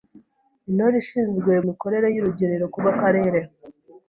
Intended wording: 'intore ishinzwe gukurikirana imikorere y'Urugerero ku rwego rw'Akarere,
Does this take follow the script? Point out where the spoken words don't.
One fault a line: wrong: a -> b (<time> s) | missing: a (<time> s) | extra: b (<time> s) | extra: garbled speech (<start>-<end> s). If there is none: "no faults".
missing: gukurikirana (1.5 s)
missing: rwego (2.8 s)